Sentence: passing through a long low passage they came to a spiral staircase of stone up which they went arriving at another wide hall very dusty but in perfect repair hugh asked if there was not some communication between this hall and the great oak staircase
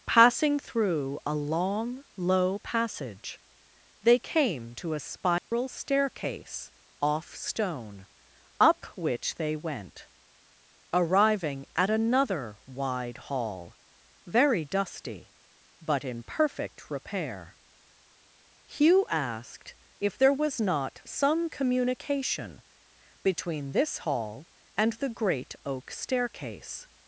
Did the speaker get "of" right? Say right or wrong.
wrong